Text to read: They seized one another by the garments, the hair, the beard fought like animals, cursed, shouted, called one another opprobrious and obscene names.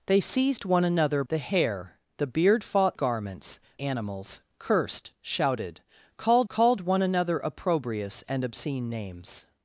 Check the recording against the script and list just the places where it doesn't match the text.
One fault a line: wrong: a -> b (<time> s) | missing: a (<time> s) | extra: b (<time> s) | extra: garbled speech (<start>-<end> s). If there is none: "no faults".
missing: by (1.2 s)
missing: garments the (1.4 s)
wrong: like -> garments (2.9 s)
extra: called (6.5 s)